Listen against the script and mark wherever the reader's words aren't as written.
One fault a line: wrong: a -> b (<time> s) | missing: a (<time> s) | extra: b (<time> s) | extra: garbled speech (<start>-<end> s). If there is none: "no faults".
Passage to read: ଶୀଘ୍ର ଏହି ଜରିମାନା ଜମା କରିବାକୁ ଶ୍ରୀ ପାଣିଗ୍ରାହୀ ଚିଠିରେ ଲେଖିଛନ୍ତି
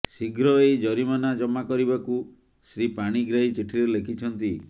no faults